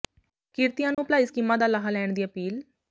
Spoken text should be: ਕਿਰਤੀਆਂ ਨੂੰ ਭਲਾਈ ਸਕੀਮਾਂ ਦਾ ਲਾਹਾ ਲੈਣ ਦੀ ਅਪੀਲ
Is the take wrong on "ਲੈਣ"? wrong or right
right